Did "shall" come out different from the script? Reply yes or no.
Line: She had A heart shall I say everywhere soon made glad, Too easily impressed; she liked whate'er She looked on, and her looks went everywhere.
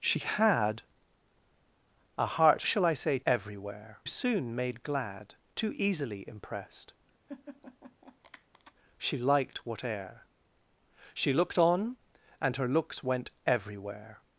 no